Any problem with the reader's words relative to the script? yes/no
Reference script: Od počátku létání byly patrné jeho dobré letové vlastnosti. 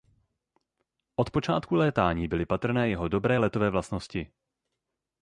no